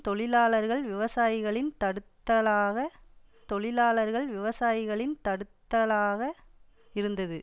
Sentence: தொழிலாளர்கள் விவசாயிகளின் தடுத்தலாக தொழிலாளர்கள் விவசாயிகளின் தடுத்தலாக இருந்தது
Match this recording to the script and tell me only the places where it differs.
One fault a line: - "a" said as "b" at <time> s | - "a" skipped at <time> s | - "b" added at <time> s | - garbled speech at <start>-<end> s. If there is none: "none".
none